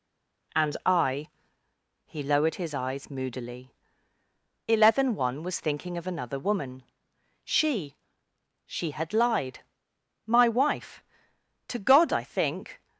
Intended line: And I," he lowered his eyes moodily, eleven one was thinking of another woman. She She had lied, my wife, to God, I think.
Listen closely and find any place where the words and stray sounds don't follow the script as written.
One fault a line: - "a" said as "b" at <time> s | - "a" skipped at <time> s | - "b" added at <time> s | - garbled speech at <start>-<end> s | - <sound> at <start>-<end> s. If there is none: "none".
none